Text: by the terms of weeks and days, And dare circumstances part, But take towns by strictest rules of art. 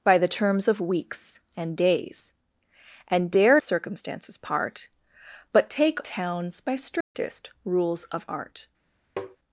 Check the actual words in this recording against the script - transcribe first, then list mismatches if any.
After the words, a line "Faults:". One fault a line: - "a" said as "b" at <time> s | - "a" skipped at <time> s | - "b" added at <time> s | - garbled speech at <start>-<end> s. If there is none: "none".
by the terms of weeks and days, And dare circumstances part, But take towns by strictest rules of art.
Faults:
none